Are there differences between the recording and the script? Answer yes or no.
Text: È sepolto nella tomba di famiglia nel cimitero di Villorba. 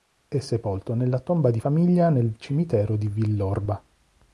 no